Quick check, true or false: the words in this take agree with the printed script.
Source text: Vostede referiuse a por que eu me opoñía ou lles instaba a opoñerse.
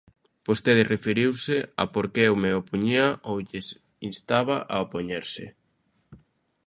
true